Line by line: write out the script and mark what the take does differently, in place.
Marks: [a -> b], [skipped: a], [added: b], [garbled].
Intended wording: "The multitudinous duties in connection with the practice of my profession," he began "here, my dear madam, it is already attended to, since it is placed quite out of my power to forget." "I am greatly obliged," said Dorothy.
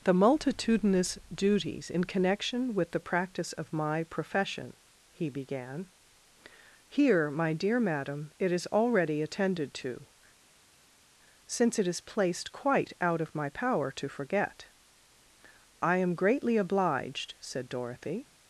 "The multitudinous duties in connection with the practice of my profession," he began "here, my dear madam, it is already attended to, since it is placed quite out of my power to forget." "I am greatly obliged," said Dorothy.